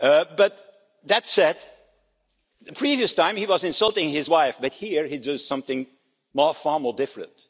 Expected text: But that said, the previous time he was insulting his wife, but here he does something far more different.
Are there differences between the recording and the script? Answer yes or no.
no